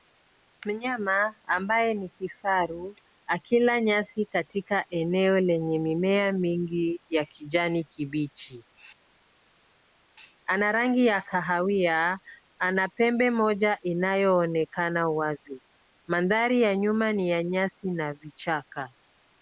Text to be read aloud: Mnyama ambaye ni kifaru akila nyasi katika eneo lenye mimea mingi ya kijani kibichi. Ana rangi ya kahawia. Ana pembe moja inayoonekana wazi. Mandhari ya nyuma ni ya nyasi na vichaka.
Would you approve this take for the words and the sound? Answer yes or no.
yes